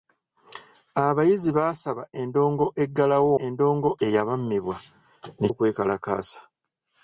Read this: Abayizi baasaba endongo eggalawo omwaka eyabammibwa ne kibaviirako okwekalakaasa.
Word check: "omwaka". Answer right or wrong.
wrong